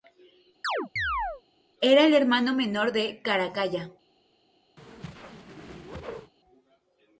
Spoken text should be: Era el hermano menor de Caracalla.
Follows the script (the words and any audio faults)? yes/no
no